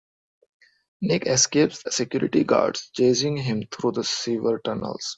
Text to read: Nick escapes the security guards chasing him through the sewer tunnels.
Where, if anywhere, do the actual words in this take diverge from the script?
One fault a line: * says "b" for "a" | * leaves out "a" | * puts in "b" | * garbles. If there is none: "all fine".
* leaves out "the"